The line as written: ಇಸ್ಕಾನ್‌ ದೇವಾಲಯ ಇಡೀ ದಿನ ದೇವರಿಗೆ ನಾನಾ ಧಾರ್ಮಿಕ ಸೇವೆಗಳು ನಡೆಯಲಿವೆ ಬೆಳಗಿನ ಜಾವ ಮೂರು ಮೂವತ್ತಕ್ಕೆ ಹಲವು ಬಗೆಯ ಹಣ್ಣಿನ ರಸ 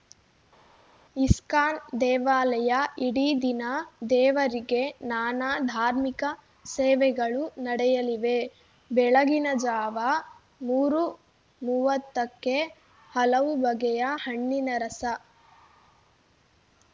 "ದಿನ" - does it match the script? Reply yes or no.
yes